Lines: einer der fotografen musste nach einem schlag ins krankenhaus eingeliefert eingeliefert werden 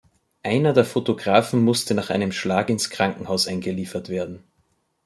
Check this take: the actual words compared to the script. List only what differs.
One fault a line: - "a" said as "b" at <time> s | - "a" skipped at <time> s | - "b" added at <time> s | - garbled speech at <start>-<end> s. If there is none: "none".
- "eingeliefert" skipped at 4.1 s